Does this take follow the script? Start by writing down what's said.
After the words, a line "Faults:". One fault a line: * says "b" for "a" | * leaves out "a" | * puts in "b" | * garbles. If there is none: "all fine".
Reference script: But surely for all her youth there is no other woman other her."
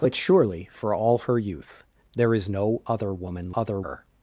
But surely for all her youth there is no other woman other her."
Faults:
all fine